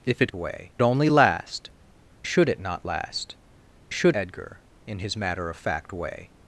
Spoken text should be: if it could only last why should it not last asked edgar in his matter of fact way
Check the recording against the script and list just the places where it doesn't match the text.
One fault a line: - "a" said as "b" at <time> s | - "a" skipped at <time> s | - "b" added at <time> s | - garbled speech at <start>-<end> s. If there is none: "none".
- "could" said as "way" at 0.3 s
- "why" skipped at 1.7 s
- "asked" said as "should" at 3.9 s